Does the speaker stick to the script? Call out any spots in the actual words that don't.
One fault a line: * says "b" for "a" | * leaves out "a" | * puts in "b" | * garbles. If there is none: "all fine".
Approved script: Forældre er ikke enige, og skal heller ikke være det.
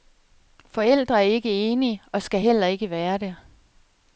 all fine